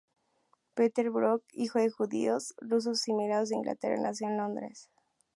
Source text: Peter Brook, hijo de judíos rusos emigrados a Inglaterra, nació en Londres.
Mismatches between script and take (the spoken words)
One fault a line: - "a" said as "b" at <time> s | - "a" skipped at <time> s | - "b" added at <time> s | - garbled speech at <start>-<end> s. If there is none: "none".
none